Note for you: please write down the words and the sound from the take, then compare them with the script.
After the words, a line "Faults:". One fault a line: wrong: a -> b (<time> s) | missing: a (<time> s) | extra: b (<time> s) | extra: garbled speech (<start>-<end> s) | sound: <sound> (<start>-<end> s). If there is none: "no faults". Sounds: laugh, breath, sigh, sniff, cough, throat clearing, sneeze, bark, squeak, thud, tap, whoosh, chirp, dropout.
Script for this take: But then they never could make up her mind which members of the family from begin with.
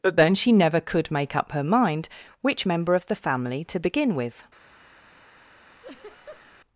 But then she never could make up her mind which member of the family to begin with.
Faults:
wrong: they -> she (0.3 s)
wrong: members -> member (2.6 s)
wrong: from -> to (3.6 s)
sound: laugh (5.8-6.6 s)